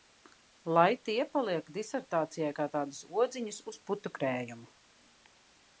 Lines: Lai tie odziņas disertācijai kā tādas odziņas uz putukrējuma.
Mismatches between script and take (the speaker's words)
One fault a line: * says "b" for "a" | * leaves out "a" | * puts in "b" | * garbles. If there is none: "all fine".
* says "paliek" for "odziņas"